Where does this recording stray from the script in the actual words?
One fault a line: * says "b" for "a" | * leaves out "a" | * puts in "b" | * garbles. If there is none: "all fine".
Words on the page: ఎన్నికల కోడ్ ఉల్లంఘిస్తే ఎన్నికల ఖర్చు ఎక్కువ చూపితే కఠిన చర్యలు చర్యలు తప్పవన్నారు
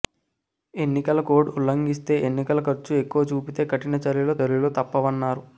all fine